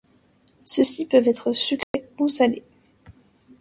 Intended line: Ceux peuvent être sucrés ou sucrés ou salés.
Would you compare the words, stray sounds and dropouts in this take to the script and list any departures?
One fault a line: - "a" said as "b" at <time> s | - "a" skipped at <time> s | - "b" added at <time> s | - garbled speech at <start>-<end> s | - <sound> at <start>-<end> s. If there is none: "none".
- "ci" added at 0.8 s
- dropout at 1.8-1.9 s
- "sucrés ou" skipped at 2.3 s